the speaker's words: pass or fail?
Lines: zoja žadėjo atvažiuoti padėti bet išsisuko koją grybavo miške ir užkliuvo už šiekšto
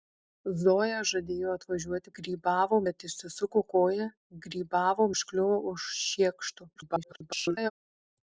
fail